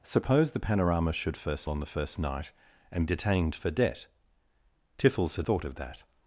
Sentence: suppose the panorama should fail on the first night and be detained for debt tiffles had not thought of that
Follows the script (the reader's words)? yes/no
no